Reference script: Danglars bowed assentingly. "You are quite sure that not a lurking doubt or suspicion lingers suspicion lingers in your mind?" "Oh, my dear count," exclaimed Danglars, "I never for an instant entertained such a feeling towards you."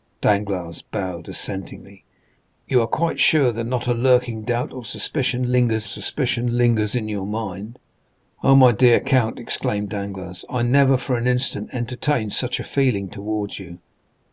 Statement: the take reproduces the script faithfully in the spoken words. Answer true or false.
true